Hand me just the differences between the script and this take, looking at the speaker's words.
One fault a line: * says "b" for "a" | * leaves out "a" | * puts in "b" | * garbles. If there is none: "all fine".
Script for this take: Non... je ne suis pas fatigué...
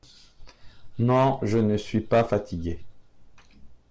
all fine